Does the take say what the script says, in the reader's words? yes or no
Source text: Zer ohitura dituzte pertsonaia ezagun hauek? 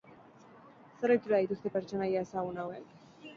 yes